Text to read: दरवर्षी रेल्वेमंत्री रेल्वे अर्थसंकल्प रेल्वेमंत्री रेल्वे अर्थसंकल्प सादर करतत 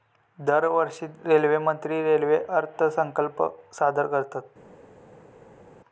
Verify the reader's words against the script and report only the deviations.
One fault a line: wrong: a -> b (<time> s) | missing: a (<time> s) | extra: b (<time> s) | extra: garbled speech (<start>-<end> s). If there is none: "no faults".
missing: रेल्वेमंत्री रेल्वे अर्थसंकल्प (3.4 s)